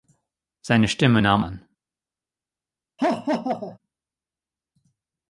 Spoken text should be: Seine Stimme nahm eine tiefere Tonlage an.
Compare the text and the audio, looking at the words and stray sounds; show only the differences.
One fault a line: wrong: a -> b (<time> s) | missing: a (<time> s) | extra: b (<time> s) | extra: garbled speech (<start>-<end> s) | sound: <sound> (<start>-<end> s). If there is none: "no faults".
missing: eine tiefere Tonlage (1.4 s)
sound: laugh (3.0-3.8 s)